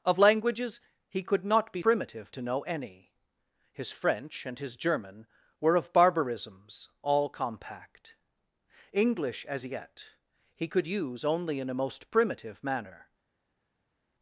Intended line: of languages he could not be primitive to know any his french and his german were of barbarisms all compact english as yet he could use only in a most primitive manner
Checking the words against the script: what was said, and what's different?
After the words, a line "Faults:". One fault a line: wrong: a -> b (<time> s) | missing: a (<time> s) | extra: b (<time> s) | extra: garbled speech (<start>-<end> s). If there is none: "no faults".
of languages he could not be primitive to know any his french and his german were of barbarisms all compact english as yet he could use only in a most primitive manner
Faults:
no faults